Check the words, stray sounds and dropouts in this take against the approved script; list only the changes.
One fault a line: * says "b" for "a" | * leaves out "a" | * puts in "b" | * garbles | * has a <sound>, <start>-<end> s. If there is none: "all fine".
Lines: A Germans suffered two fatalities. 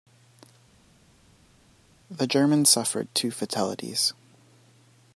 * says "The" for "A"